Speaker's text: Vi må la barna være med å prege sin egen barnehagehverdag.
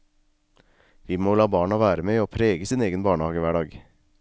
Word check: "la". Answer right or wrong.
right